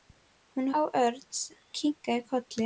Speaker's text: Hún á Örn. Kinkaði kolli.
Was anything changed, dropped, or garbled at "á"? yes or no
no